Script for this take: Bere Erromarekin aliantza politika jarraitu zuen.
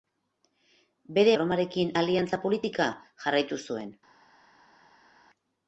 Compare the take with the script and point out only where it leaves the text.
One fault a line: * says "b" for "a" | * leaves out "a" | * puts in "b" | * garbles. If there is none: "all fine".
all fine